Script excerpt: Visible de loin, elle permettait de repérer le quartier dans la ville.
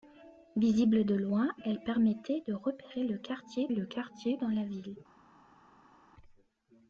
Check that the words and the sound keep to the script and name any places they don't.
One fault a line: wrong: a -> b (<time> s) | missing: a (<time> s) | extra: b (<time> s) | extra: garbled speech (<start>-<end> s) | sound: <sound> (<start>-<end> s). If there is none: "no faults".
extra: le quartier (3.7 s)